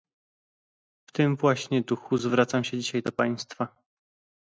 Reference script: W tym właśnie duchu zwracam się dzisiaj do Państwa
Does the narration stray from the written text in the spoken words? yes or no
no